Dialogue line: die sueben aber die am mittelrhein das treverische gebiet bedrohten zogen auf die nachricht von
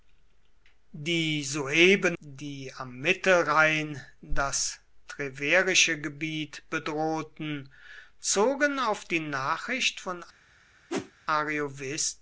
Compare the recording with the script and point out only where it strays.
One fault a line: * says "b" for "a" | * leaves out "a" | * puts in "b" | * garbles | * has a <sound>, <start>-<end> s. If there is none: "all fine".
* leaves out "aber"
* has a whoosh, 10.9-11.1 s